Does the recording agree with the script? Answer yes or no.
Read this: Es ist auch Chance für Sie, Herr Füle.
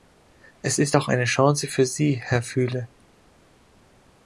no